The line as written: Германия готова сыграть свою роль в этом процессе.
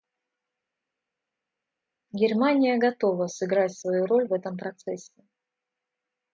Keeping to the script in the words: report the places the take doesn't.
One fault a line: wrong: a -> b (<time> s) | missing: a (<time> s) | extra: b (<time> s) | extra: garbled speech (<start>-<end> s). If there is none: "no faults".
no faults